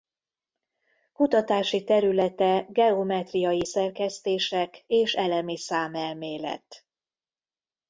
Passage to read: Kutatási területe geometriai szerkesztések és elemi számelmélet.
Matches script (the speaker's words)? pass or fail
pass